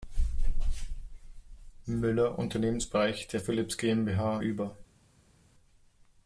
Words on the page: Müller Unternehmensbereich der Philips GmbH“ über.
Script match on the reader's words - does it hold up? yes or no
yes